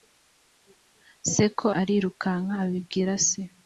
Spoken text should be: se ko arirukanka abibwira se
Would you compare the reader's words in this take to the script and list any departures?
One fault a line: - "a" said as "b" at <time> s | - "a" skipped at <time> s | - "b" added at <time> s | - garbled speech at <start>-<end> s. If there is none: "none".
none